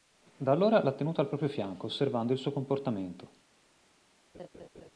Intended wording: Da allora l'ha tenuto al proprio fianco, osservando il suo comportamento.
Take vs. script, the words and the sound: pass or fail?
fail